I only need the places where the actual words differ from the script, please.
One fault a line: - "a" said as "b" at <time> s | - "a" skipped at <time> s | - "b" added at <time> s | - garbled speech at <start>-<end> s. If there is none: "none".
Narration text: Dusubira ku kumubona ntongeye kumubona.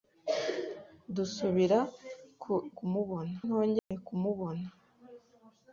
none